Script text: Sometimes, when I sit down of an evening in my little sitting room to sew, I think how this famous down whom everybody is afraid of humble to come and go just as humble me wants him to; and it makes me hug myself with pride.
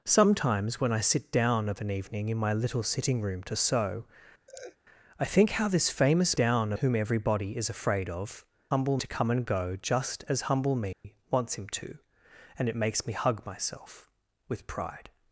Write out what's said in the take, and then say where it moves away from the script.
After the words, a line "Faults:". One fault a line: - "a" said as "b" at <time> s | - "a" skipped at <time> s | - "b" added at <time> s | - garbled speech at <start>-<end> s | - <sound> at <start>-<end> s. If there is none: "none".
Sometimes, when I sit down of an evening in my little sitting room to sew, I think how this famous down whom everybody is afraid of humble to come and go just as humble me wants him to; and it makes me hug myself with pride.
Faults:
- laugh at 4.5-4.8 s
- dropout at 10.9-11.0 s